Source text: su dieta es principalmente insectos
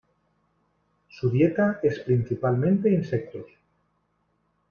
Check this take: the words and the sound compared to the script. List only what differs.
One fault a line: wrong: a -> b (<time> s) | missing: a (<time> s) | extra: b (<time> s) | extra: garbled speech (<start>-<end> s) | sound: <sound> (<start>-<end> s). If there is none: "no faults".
no faults